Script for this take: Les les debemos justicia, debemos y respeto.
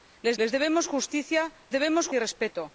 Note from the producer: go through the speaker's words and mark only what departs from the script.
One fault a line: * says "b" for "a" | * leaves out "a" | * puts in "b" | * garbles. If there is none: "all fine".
all fine